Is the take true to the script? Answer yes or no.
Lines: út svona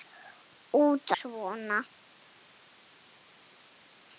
yes